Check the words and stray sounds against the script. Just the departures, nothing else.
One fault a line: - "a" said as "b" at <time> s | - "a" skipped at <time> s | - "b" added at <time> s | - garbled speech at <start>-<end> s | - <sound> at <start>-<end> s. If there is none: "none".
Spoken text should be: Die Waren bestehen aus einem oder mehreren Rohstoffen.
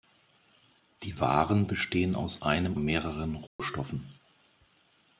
- "oder" skipped at 2.8 s
- dropout at 3.5-3.6 s